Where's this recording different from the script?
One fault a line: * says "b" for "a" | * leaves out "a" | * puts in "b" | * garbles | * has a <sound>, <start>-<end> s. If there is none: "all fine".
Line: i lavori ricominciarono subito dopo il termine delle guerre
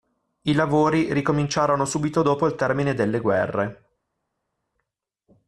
all fine